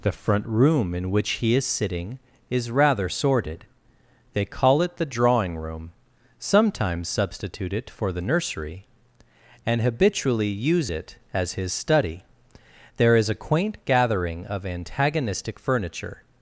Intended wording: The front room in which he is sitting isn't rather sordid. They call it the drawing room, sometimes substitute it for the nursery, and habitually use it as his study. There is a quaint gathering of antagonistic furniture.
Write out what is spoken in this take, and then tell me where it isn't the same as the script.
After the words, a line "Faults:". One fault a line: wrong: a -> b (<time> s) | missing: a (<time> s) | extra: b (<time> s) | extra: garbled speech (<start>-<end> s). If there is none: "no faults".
The front room in which he is sitting is rather sordid. They call it the drawing room, sometimes substitute it for the nursery, and habitually use it as his study. There is a quaint gathering of antagonistic furniture.
Faults:
wrong: isn't -> is (2.5 s)